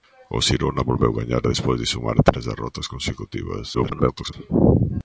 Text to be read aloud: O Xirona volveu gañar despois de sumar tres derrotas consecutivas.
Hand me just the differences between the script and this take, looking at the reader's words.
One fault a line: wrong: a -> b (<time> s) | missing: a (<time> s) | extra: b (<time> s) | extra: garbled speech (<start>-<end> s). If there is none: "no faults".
extra: garbled speech (3.7-4.3 s)